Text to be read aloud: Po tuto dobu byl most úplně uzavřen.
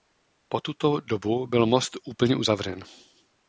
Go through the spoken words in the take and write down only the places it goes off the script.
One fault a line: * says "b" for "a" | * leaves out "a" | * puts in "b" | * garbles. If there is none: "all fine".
all fine